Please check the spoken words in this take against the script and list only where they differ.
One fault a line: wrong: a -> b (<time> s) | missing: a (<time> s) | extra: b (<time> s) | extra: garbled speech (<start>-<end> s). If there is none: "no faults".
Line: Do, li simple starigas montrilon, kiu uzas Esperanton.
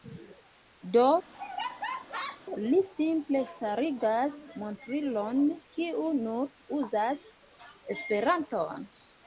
extra: nur (6.2 s)